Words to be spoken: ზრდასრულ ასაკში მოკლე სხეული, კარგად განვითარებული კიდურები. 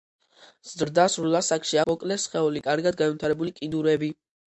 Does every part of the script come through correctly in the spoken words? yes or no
yes